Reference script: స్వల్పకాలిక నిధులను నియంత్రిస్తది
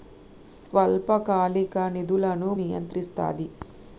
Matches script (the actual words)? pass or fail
pass